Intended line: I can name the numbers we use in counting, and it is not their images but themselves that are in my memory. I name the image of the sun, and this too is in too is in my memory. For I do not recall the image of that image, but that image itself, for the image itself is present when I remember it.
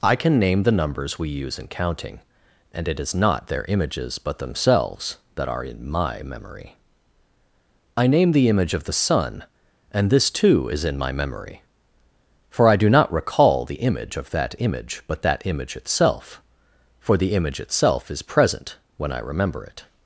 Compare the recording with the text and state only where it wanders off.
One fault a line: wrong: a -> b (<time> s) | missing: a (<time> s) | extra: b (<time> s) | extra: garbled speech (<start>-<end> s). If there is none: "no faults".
missing: too is in (11.0 s)